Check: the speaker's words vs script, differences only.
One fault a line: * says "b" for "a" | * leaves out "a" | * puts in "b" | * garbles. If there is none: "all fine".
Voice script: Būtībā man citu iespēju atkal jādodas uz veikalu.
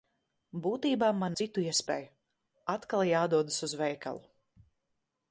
all fine